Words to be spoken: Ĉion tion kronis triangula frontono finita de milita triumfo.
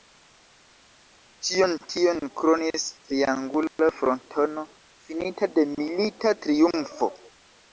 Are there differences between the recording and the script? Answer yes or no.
no